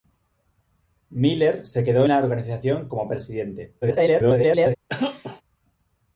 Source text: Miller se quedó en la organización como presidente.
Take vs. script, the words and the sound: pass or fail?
fail